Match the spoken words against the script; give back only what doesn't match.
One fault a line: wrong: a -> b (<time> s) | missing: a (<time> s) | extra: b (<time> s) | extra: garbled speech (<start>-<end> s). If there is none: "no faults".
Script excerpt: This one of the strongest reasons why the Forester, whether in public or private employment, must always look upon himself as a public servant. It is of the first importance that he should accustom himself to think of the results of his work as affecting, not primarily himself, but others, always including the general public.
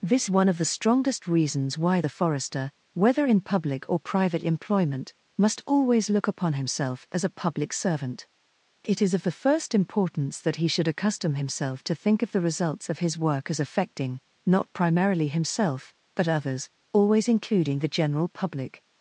no faults